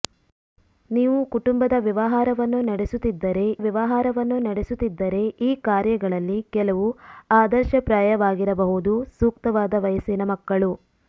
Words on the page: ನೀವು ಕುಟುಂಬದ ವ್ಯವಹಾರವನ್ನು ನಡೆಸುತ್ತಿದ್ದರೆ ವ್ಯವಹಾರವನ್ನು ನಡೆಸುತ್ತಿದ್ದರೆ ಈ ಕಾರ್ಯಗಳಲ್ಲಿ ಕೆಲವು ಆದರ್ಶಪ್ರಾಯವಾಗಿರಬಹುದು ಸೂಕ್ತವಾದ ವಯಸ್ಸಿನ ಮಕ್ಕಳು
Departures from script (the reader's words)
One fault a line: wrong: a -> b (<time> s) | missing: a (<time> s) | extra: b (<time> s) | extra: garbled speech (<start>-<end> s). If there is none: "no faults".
no faults